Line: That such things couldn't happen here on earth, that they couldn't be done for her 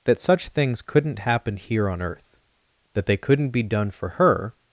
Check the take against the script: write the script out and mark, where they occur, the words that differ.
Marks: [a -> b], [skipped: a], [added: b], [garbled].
That such things couldn't happen here on earth, that they couldn't be done for her